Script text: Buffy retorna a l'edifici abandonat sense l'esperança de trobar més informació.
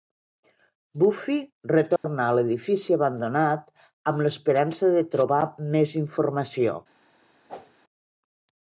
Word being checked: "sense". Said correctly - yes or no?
no